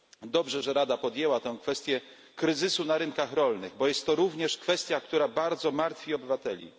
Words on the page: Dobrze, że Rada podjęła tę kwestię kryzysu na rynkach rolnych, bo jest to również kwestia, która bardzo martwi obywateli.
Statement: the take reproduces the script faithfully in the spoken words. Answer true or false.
true